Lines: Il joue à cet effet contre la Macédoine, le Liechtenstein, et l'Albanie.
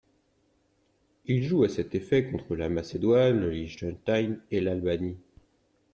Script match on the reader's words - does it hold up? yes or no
yes